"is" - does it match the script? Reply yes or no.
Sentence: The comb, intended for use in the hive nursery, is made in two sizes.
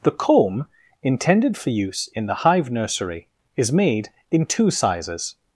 yes